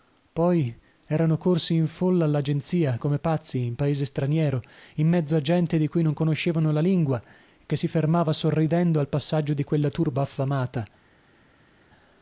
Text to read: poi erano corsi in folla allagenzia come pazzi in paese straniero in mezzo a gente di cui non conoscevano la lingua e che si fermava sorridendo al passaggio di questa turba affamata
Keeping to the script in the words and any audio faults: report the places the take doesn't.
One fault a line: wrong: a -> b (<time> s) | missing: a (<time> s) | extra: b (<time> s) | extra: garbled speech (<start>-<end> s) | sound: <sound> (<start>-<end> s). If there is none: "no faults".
wrong: questa -> quella (9.7 s)